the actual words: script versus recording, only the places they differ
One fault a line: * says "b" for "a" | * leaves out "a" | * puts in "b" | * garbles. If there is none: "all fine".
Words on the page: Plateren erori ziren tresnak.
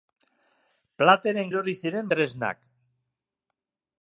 all fine